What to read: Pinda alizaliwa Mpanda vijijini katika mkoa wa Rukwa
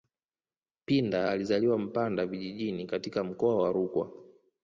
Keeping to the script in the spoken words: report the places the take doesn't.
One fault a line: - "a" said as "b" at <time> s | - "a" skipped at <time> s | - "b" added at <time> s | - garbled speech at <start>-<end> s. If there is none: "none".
none